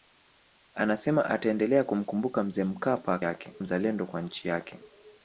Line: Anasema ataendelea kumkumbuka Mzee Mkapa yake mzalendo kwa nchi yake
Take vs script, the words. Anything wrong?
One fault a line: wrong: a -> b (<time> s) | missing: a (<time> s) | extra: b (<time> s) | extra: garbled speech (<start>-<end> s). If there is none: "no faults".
no faults